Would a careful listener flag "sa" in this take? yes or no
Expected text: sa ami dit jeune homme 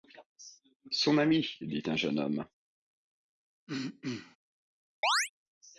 yes